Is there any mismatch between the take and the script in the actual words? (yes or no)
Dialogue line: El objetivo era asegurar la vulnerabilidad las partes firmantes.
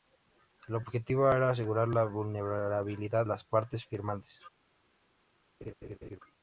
no